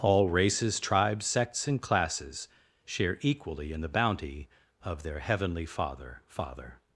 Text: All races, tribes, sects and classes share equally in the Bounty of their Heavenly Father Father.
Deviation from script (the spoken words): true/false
false